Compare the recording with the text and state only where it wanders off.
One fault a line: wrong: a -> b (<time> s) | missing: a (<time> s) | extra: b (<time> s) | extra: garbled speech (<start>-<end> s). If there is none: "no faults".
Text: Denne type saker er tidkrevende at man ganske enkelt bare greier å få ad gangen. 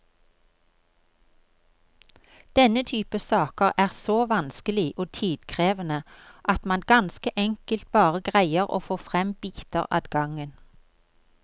extra: så vanskelig og (3.9 s)
extra: frem biter (9.0 s)